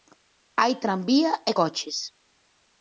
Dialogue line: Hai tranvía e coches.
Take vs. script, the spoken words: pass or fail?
pass